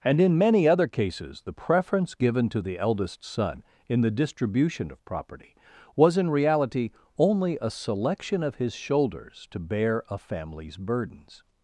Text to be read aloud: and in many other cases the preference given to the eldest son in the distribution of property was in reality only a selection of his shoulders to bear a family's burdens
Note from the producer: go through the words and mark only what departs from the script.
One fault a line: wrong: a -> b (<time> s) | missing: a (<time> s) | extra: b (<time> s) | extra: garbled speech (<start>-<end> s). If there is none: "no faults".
no faults